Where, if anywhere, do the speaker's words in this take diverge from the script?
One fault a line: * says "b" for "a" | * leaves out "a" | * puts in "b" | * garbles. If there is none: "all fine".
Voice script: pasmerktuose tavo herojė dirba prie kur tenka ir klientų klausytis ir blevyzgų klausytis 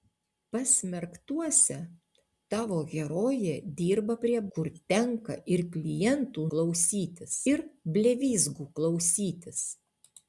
all fine